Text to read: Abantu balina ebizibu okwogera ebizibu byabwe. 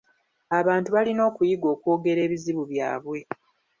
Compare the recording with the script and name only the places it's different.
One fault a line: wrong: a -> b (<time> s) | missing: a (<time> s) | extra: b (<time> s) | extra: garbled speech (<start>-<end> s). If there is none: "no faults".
wrong: ebizibu -> okuyiga (1.3 s)